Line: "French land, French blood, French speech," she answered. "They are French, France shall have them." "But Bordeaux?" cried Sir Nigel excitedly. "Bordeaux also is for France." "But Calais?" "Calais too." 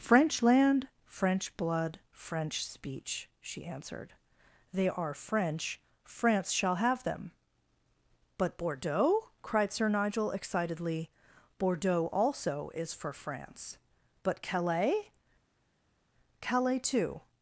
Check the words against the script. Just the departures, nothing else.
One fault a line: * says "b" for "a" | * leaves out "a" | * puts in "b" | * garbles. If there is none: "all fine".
all fine